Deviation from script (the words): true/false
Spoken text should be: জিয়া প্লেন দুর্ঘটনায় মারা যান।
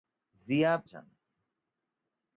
true